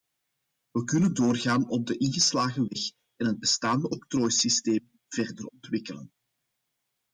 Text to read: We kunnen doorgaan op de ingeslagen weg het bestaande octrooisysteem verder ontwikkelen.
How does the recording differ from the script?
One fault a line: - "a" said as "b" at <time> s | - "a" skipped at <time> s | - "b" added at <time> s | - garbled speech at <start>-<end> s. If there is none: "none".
- "en" added at 3.2 s